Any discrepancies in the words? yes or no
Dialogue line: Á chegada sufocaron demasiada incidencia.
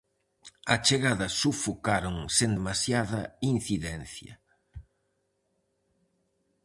yes